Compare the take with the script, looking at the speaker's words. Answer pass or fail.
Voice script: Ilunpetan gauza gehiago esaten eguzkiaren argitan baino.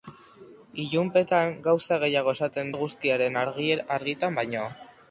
pass